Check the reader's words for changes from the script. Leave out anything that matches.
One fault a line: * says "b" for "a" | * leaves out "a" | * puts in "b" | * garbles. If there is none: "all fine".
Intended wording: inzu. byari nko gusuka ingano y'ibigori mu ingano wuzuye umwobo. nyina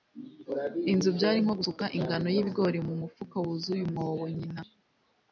* says "mufuka" for "ingano"